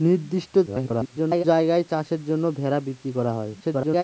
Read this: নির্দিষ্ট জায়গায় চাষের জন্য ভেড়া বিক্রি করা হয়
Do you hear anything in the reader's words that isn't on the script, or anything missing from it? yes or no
yes